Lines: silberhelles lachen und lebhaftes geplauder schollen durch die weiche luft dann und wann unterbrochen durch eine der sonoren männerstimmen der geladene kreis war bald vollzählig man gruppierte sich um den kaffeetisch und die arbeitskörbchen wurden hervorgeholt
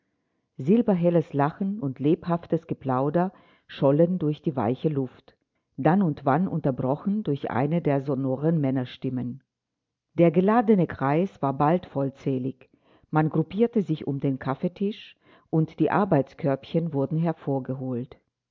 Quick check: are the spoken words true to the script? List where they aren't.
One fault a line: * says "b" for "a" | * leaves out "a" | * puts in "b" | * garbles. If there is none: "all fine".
all fine